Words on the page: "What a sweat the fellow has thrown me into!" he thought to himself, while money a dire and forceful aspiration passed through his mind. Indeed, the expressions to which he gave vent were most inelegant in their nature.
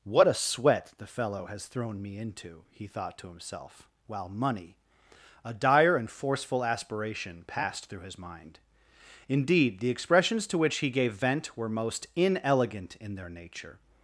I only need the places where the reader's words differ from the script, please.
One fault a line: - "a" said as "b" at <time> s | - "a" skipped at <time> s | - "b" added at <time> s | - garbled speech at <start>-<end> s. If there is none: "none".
none